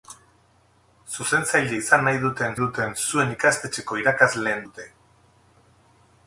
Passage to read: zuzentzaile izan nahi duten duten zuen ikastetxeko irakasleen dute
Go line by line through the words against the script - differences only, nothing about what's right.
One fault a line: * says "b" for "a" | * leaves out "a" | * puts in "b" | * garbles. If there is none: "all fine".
all fine